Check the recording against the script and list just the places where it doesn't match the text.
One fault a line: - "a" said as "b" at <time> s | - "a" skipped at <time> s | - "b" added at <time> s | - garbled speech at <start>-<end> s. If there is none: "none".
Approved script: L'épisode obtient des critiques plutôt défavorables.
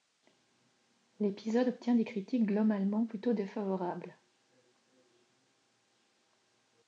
- "globalement" added at 2.5 s